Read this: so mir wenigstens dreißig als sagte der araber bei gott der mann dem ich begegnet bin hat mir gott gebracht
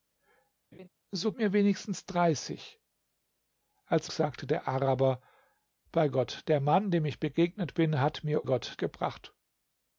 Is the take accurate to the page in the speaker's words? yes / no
yes